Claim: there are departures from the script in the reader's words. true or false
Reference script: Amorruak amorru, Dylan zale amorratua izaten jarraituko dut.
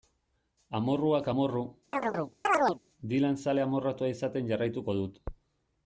false